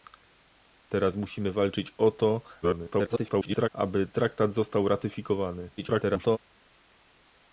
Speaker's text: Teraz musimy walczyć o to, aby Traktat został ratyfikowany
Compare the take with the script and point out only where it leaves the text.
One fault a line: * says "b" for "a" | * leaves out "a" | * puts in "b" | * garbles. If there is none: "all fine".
* garbles
* garbles